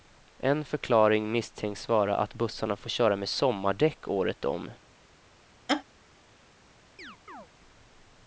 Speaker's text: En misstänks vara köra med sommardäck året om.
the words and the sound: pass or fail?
fail